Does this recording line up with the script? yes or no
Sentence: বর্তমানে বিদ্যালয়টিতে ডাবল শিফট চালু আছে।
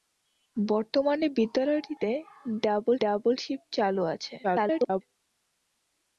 no